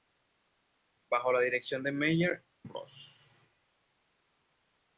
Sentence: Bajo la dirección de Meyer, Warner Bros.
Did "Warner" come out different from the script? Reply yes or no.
yes